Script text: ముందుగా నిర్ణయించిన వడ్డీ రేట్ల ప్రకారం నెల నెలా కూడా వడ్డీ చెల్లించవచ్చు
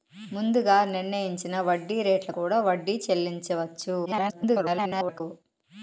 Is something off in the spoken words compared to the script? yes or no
yes